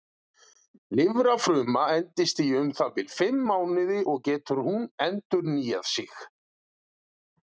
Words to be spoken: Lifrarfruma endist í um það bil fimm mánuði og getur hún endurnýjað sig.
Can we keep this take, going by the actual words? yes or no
yes